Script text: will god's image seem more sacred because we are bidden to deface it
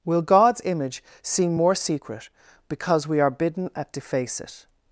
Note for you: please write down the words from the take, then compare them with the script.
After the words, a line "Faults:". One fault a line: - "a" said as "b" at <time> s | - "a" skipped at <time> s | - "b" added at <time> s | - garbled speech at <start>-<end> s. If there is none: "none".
will god's image seem more secret because we are bidden at deface it
Faults:
- "sacred" said as "secret" at 1.8 s
- "to" said as "at" at 3.7 s